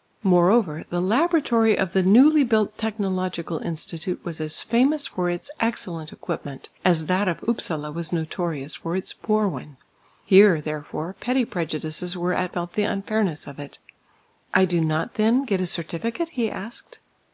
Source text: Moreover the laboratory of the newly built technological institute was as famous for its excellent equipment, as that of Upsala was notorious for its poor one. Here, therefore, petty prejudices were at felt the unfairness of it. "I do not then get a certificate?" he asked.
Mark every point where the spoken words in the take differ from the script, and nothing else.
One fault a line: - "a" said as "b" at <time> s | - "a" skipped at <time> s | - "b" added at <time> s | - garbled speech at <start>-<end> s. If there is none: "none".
none